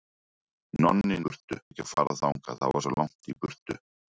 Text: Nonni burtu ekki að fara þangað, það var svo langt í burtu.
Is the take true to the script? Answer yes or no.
yes